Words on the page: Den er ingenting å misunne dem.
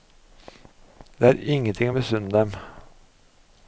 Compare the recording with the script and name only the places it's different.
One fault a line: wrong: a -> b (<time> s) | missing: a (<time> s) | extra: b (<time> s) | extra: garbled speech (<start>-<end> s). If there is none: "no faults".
wrong: Den -> Det (1.2 s)